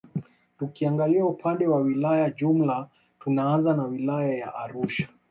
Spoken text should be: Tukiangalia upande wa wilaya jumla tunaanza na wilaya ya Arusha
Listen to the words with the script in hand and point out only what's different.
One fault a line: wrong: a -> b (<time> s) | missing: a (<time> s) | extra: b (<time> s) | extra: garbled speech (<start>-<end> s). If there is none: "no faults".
no faults